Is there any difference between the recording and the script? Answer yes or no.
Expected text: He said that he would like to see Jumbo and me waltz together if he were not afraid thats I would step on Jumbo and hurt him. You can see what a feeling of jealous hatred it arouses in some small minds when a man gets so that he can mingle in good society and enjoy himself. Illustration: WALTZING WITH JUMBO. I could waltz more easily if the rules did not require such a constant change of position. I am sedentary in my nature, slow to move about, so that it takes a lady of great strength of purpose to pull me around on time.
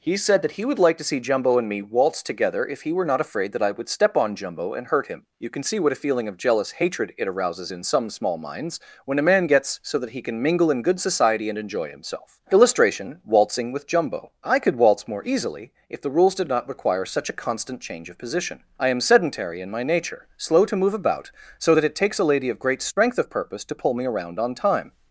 yes